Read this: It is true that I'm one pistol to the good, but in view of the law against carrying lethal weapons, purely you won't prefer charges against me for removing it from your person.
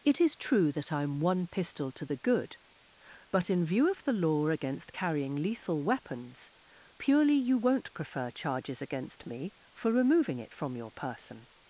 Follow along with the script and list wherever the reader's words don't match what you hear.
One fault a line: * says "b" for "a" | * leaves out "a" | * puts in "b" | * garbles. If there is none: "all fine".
all fine